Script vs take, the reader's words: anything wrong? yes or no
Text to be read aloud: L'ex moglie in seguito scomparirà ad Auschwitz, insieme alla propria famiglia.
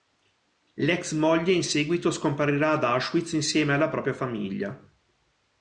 no